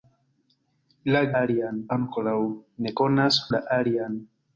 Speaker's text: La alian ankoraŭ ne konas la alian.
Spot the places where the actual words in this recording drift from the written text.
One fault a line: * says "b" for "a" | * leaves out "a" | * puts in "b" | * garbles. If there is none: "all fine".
all fine